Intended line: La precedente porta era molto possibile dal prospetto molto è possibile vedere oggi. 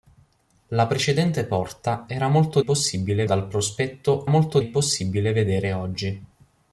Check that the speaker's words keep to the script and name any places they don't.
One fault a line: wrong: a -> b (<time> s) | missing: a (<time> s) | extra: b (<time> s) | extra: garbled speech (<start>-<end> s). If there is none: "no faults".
no faults